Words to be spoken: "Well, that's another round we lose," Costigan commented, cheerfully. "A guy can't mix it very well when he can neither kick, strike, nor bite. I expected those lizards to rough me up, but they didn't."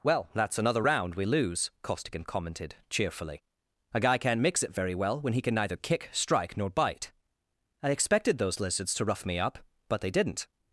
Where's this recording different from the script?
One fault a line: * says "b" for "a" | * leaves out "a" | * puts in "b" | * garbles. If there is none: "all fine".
all fine